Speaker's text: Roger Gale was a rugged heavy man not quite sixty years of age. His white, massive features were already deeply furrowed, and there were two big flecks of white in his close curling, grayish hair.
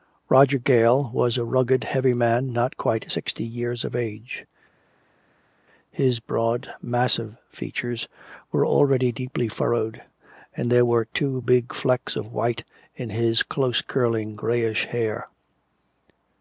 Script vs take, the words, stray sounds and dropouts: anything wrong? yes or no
yes